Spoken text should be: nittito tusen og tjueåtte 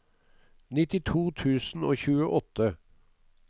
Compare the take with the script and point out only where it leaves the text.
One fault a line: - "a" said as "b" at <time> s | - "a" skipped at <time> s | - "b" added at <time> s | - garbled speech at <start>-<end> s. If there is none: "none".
none